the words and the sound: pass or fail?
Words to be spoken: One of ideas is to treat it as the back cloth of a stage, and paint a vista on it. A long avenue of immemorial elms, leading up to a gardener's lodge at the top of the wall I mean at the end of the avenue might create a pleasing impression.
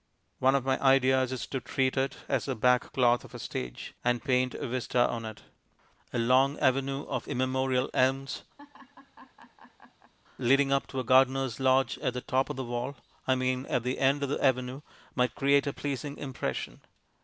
fail